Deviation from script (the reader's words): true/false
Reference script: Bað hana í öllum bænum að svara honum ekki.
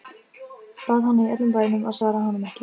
false